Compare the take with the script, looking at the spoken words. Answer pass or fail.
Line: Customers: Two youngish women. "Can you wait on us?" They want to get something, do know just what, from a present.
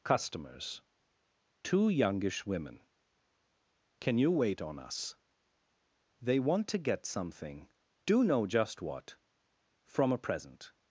pass